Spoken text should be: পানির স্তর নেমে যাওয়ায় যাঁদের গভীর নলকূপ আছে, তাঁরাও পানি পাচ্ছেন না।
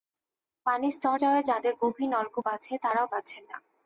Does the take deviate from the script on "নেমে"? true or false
true